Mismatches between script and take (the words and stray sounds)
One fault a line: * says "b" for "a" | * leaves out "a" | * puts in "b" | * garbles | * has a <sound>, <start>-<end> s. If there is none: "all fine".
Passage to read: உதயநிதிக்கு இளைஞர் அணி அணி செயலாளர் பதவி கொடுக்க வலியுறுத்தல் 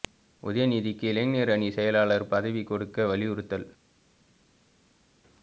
* leaves out "அணி"